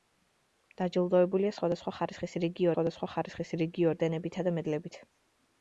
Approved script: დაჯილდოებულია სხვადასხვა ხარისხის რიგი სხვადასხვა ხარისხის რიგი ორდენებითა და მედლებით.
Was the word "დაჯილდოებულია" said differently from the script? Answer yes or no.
no